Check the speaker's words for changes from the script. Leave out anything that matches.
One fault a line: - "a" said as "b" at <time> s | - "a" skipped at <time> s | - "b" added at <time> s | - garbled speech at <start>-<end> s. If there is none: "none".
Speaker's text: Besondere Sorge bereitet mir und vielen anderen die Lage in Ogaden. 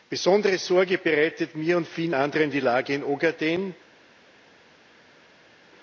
none